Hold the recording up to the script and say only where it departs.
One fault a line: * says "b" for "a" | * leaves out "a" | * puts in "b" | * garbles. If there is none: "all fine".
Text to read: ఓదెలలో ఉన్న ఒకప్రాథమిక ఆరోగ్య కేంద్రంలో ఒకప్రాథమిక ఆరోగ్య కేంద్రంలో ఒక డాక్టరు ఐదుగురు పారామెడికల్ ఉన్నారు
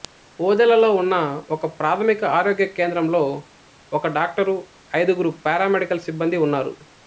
* leaves out "ఒకప్రాథమిక ఆరోగ్య కేంద్రంలో"
* puts in "సిబ్బందీ"